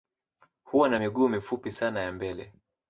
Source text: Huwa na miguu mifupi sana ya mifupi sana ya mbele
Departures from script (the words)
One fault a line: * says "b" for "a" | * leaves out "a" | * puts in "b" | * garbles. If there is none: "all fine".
* leaves out "mifupi sana ya"